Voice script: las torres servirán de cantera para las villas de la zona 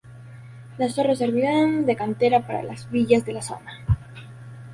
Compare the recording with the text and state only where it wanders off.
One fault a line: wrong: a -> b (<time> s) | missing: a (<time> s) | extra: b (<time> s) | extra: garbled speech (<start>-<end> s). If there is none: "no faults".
no faults